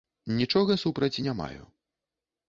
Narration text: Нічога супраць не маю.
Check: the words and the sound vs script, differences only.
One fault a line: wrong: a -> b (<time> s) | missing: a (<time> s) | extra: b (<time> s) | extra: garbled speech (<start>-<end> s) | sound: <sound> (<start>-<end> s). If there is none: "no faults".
no faults